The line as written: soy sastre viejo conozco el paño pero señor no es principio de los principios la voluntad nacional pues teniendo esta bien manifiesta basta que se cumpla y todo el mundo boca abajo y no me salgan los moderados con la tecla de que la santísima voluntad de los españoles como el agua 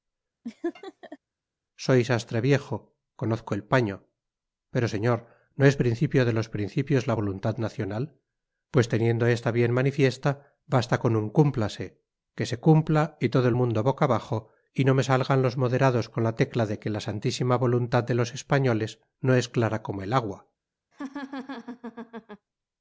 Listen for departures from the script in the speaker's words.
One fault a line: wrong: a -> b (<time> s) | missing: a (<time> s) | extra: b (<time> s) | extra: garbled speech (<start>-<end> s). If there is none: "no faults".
extra: con un cúmplase (11.0 s)
extra: no es clara (19.2 s)